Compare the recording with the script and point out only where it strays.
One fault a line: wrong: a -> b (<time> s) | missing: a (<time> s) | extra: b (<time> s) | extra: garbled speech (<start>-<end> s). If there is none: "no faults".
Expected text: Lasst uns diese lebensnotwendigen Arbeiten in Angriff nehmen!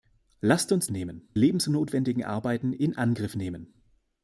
wrong: diese -> nehmen (0.9 s)